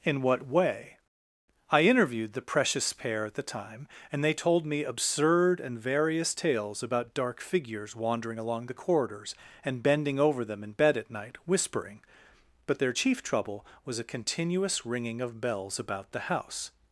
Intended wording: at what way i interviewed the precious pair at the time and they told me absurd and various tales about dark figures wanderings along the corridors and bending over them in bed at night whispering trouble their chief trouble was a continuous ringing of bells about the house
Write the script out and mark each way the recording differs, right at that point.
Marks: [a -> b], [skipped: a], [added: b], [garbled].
[at -> in] what way i interviewed the precious pair at the time and they told me absurd and various tales about dark figures [wanderings -> wandering] along the corridors and bending over them in bed at night whispering [trouble -> but] their chief trouble was a continuous ringing of bells about the house